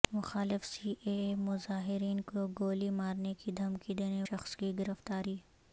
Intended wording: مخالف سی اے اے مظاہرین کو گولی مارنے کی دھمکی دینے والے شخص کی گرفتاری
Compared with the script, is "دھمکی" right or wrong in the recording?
right